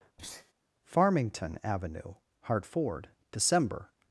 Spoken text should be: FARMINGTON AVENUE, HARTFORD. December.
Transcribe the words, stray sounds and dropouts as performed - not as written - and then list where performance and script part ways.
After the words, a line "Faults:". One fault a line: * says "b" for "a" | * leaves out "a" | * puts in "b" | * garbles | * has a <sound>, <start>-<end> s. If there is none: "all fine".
FARMINGTON AVENUE, HARTFORD. December.
Faults:
* has a sneeze, 0.2-0.5 s